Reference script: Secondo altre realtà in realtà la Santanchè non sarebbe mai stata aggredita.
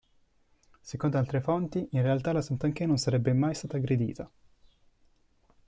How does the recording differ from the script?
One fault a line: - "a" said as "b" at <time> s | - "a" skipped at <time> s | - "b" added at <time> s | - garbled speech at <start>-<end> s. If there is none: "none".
- "realtà" said as "fonti" at 1.4 s